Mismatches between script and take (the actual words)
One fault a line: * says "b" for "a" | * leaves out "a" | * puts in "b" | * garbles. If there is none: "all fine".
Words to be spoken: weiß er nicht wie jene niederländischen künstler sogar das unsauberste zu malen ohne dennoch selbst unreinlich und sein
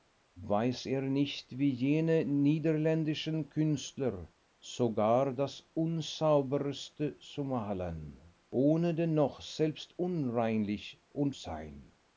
all fine